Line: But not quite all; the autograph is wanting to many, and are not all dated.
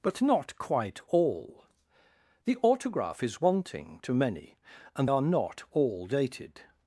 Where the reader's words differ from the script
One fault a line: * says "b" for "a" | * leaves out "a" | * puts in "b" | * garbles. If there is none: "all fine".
all fine